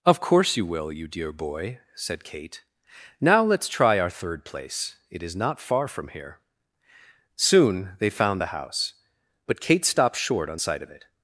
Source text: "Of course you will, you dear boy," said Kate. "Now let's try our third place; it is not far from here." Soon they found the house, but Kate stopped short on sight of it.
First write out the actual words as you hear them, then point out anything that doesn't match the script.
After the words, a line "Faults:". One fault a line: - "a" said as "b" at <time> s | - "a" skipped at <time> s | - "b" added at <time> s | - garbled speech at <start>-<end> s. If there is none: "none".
"Of course you will, you dear boy," said Kate. "Now let's try our third place; it is not far from here." Soon they found the house, but Kate stopped short on sight of it.
Faults:
none